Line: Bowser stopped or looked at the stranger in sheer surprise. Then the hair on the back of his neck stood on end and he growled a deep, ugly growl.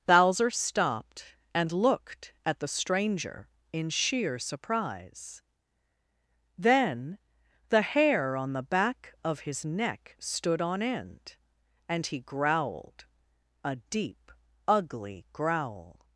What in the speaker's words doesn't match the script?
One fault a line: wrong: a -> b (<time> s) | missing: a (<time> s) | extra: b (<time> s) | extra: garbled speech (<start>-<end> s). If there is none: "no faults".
wrong: or -> and (1.5 s)